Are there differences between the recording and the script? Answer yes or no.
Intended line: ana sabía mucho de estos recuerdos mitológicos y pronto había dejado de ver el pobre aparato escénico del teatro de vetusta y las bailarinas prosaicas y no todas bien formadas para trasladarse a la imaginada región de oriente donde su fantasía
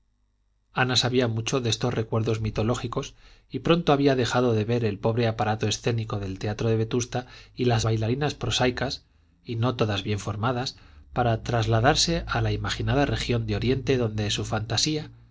no